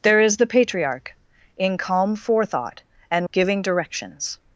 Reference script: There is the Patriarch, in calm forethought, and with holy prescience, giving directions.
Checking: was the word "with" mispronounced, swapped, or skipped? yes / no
yes